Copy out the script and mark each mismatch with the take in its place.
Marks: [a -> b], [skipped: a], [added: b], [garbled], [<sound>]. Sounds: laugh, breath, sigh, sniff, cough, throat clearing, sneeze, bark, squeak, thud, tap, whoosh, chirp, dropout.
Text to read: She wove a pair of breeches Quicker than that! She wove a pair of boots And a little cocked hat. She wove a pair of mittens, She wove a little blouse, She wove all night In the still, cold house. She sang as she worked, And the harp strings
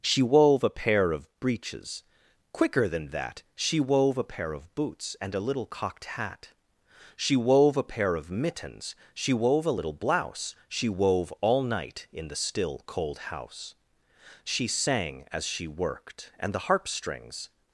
She wove a pair of breeches Quicker than that! She wove a pair of boots And a little cocked hat. She wove a pair of mittens, She wove a little blouse, She wove all night In the still, cold house. She sang as she worked, And the harp strings